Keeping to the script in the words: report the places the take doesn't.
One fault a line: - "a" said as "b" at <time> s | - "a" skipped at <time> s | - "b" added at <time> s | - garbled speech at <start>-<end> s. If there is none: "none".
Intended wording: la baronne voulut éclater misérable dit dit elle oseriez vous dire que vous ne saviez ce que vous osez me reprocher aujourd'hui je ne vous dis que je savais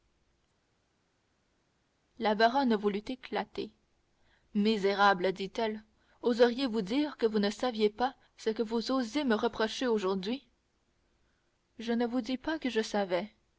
- "dit" skipped at 5.5 s
- "pas" added at 7.9 s
- "pas" added at 12.4 s